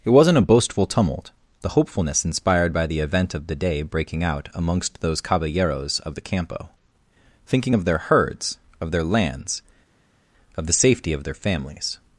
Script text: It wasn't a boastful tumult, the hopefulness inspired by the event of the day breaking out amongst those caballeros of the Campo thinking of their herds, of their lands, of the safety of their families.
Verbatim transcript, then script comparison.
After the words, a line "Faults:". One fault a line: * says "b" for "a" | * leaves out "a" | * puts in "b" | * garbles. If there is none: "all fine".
It wasn't a boastful tumult, the hopefulness inspired by the event of the day breaking out amongst those caballeros of the Campo thinking of their herds, of their lands, of the safety of their families.
Faults:
all fine